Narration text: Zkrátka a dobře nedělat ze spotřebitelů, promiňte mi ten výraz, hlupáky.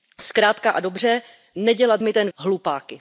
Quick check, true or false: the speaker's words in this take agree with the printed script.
false